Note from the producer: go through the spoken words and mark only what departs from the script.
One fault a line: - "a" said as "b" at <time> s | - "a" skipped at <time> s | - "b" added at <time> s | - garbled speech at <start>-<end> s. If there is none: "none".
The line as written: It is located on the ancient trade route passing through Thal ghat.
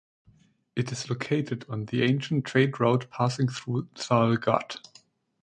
none